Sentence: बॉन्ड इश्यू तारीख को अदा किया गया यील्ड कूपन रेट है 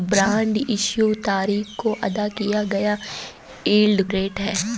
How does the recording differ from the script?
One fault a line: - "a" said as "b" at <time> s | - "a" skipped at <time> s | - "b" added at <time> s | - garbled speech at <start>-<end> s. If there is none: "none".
- "कूपन" skipped at 4.0 s